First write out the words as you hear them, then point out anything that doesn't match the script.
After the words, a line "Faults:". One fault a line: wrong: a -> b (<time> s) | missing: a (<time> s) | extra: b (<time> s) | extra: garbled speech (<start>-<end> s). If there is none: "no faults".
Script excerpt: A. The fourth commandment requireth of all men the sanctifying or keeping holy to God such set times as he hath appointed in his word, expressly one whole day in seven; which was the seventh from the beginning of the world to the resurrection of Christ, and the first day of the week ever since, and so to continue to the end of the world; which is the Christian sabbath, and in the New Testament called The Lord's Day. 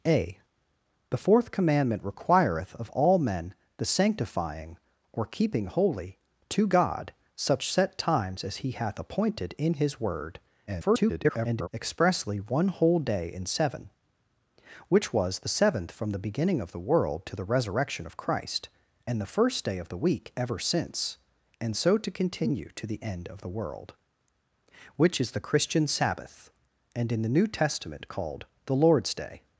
A. The fourth commandment requireth of all men the sanctifying or keeping holy to God such set times as he hath appointed in his word, [garbled] expressly one whole day in seven; which was the seventh from the beginning of the world to the resurrection of Christ, and the first day of the week ever since, and so to continue to the end of the world; which is the Christian sabbath, and in the New Testament called The Lord's Day.
Faults:
extra: garbled speech (10.7-11.7 s)